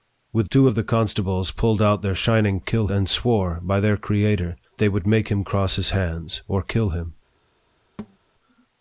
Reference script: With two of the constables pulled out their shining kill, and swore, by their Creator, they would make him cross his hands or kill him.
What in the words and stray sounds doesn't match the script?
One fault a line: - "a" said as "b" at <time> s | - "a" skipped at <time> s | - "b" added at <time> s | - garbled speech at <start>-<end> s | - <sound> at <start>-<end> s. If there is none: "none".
- thud at 8.0-8.2 s